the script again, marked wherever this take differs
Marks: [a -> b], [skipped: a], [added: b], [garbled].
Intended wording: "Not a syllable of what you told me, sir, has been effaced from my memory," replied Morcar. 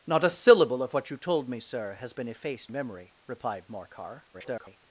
"Not a syllable of what you told me, sir, has been effaced [skipped: from my] memory," replied Morcar. [garbled]